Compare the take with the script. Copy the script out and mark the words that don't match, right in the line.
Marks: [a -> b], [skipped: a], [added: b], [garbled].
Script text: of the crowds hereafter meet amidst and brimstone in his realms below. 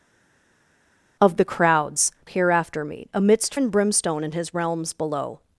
of the crowds hereafter meet amidst and brimstone in his realms below.